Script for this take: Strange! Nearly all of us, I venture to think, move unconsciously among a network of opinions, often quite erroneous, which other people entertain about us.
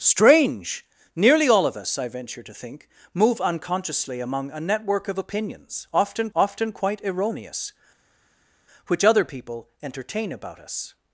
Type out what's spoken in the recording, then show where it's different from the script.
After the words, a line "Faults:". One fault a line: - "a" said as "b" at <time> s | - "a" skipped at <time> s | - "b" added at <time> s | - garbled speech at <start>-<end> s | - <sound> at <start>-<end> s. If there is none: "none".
Strange! Nearly all of us, I venture to think, move unconsciously among a network of opinions, often often quite erroneous, which other people entertain about us.
Faults:
- "often" added at 6.4 s